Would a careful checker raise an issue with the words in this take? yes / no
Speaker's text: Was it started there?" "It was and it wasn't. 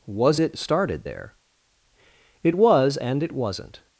no